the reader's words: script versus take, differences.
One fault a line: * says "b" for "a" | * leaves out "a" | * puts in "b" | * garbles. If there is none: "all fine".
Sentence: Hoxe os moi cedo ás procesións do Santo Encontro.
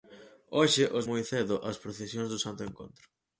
all fine